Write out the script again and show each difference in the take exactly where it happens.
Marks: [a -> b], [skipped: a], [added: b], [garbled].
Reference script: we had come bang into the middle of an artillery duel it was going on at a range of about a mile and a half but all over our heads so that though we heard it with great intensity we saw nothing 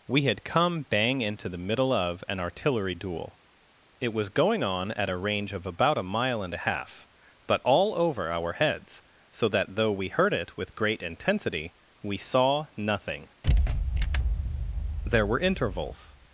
we had come bang into the middle of an artillery duel it was going on at a range of about a mile and a half but all over our heads so that though we heard it with great intensity we saw nothing [added: there were intervals]